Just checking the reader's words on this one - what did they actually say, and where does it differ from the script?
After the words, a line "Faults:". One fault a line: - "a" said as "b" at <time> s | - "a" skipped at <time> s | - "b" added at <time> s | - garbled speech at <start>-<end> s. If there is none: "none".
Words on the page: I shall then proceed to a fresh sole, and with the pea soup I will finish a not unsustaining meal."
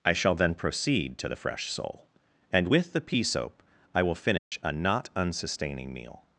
I shall then proceed to the fresh sole, and with the pea soap I will finish a not unsustaining meal."
Faults:
- "a" said as "the" at 1.3 s
- "soup" said as "soap" at 3.2 s